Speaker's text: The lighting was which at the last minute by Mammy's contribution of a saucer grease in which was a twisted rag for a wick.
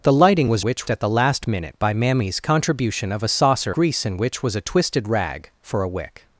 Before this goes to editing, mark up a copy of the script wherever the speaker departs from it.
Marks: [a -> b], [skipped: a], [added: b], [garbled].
The lighting was which at the last minute by Mammy's contribution of a saucer grease in which was a twisted rag for a wick.